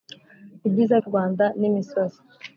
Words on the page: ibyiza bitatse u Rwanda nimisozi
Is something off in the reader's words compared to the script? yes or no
yes